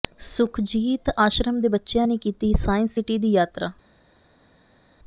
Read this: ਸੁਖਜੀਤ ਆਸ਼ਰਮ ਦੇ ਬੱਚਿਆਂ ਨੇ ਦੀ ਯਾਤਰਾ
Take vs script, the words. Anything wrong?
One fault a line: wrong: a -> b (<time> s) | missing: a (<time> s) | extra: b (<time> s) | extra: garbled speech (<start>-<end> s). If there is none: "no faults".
extra: ਕੀਤੀ ਸਾਇੰਸ ਸਿਟੀ (2.2 s)